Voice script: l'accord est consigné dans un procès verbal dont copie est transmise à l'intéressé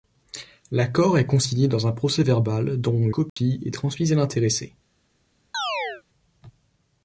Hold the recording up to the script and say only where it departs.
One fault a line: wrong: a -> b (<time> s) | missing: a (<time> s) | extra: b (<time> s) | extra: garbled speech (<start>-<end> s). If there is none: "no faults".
no faults